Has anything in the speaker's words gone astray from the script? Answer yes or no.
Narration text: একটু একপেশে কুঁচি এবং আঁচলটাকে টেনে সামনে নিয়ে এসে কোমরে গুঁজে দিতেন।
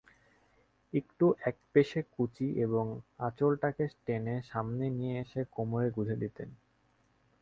no